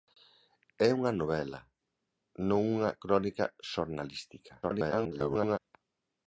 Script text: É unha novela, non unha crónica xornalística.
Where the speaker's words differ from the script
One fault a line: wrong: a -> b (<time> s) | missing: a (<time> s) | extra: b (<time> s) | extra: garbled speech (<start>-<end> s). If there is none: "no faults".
extra: garbled speech (4.6-5.6 s)